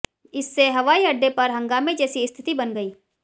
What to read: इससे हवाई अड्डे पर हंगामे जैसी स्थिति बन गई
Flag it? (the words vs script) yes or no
no